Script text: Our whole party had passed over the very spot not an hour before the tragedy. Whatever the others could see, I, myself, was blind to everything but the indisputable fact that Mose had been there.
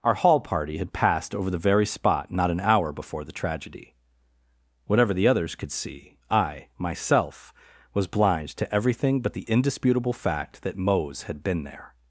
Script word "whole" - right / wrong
wrong